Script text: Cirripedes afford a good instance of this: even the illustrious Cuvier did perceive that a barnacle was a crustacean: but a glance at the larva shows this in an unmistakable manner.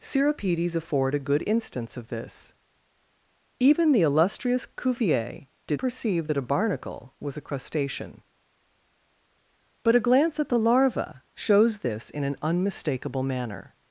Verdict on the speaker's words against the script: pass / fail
pass